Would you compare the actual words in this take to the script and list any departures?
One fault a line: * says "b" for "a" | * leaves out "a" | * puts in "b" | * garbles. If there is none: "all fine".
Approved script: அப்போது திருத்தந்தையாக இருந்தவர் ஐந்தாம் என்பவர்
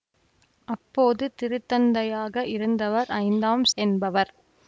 all fine